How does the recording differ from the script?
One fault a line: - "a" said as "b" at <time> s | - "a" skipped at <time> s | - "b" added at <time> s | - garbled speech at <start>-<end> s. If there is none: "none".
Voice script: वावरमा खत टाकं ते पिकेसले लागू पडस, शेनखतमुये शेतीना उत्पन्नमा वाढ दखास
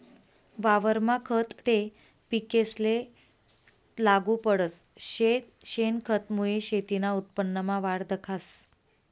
- "टाकं" skipped at 1.5 s